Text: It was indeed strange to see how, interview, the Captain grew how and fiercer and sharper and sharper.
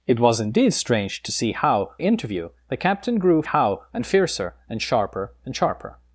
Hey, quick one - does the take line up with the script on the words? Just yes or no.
yes